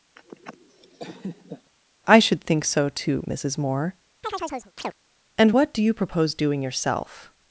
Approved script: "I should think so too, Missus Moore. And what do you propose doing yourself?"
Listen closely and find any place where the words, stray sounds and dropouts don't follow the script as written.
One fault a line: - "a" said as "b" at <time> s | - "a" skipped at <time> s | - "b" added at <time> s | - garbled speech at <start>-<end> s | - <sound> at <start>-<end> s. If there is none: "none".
- laugh at 0.2-1.7 s
- chirp at 4.2-4.9 s